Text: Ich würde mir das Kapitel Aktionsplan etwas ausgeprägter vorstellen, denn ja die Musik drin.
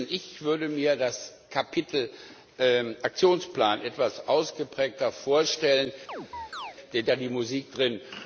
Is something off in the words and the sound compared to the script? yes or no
yes